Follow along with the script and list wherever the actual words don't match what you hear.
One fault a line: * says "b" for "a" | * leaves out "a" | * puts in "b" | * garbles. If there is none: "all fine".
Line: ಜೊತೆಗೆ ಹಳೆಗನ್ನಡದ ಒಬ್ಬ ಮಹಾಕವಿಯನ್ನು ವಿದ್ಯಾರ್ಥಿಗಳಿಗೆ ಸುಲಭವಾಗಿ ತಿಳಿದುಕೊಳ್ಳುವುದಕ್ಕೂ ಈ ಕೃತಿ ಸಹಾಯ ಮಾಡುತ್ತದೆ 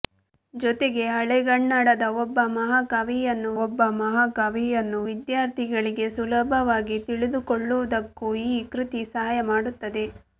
* puts in "ಒಬ್ಬ ಮಹಾಕವಿಯನ್ನು"